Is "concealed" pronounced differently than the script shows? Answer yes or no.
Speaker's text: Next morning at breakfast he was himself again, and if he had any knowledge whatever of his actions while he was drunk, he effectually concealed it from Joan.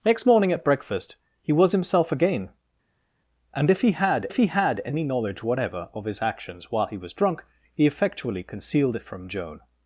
no